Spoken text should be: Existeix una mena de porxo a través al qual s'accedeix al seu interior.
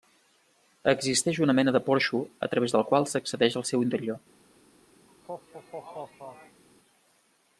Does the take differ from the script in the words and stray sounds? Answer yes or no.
yes